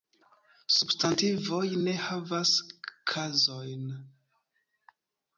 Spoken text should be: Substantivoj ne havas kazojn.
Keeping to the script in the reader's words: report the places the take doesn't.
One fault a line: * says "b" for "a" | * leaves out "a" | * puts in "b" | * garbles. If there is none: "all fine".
all fine